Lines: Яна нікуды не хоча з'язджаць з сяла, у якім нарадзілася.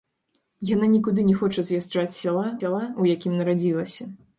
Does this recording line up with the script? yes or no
no